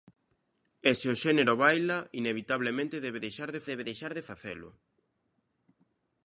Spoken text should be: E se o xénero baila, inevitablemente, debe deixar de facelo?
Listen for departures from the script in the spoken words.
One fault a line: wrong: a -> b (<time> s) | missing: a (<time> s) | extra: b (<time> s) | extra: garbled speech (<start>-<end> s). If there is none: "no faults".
extra: debe deixar de (3.7 s)